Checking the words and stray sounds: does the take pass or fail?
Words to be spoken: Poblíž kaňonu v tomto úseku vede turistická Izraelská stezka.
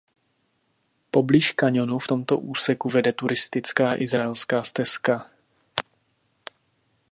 pass